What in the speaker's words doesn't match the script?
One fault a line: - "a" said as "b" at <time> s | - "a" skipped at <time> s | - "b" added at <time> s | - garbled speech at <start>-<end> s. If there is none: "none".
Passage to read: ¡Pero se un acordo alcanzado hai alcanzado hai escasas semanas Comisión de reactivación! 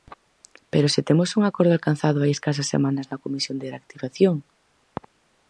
- "temos" added at 1.1 s
- "alcanzado hai" skipped at 2.3 s
- "na" added at 3.1 s